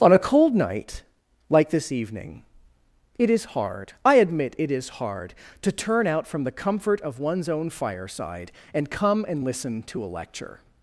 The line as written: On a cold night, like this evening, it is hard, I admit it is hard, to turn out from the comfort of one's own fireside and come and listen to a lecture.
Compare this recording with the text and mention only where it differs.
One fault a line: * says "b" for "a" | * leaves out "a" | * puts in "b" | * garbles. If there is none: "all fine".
all fine